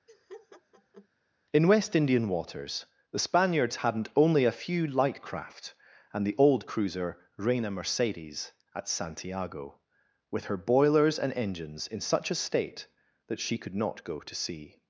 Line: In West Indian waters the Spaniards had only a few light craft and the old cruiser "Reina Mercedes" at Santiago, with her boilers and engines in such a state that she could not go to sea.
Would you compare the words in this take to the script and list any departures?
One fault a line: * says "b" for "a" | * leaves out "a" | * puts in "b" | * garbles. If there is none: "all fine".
* says "hadn't" for "had"